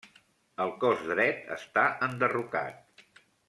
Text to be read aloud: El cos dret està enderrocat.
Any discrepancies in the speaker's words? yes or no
no